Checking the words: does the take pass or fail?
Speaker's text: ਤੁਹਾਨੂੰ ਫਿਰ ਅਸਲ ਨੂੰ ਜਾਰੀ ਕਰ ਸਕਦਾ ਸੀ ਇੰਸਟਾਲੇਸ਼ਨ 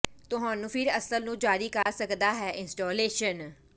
fail